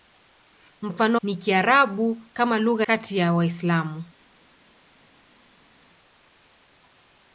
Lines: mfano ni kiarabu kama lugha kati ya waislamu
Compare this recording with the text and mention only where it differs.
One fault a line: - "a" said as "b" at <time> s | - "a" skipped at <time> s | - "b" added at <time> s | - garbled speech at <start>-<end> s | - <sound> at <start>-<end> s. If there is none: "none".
none